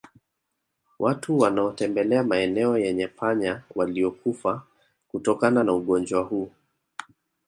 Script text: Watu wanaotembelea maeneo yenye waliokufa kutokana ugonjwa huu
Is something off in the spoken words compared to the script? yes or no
yes